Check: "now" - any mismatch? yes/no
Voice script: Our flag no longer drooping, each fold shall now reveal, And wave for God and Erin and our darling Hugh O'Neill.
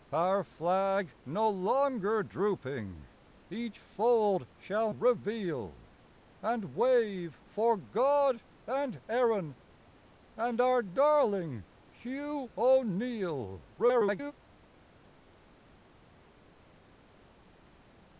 yes